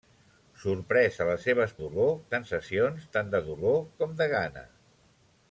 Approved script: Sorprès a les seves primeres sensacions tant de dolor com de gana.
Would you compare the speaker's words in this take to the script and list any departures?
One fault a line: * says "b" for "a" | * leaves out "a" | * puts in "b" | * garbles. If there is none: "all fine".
* says "dolor" for "primeres"